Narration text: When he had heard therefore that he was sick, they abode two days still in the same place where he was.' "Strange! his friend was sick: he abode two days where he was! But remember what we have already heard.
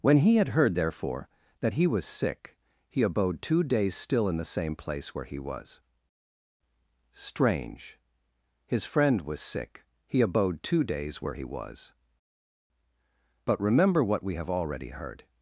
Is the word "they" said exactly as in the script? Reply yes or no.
no